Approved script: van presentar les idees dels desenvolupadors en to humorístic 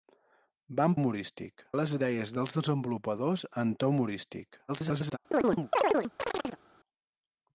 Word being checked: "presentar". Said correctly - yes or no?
no